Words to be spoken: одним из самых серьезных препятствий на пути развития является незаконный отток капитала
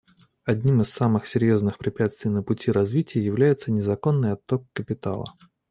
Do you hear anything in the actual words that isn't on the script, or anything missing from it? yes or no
no